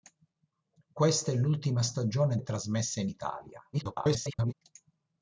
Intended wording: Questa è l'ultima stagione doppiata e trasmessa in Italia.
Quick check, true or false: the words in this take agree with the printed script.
false